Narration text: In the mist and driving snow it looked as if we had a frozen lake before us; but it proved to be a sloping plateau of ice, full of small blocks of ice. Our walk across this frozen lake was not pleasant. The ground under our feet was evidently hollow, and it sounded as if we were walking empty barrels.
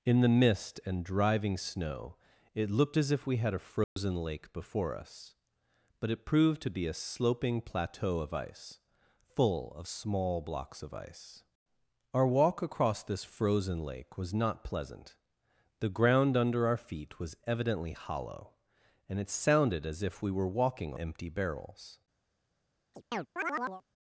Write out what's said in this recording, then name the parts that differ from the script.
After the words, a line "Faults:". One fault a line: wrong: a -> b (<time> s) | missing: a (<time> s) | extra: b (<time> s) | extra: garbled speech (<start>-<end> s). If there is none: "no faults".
In the mist and driving snow it looked as if we had a frozen lake before us; but it proved to be a sloping plateau of ice, full of small blocks of ice. Our walk across this frozen lake was not pleasant. The ground under our feet was evidently hollow, and it sounded as if we were walking empty barrels.
Faults:
no faults